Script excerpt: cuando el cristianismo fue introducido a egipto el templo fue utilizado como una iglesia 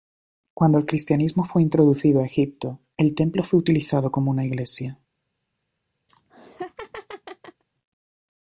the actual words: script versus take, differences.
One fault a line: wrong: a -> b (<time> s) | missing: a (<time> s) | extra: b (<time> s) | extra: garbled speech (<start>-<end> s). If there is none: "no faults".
no faults